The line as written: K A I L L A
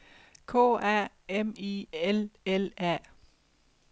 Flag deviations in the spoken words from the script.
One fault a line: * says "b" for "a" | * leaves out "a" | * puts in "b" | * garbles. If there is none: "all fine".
* puts in "M"